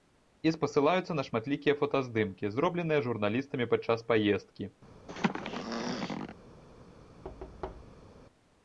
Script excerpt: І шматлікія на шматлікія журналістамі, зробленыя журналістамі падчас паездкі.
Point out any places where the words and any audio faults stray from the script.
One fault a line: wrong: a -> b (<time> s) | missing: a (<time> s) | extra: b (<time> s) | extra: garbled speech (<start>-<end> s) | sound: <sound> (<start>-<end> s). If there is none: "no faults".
wrong: шматлікія -> спасылаюцца (0.5 s)
wrong: журналістамі -> фотаздымкі (1.8 s)
sound: throat clearing (5.1-6.4 s)
sound: thud (7.2-8.1 s)